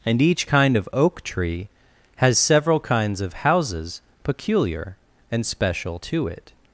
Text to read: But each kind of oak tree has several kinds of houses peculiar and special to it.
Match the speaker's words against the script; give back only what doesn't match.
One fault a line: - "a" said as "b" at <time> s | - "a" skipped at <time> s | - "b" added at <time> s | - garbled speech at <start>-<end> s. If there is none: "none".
- "But" said as "And" at 0.1 s